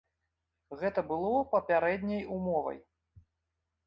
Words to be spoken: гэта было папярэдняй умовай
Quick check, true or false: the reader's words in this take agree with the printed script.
true